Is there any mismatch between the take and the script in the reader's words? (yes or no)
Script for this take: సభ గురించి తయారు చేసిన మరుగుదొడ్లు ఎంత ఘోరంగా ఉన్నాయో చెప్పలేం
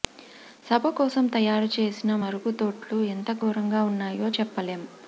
yes